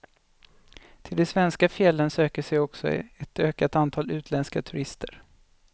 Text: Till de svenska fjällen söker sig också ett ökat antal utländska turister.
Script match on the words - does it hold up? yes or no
yes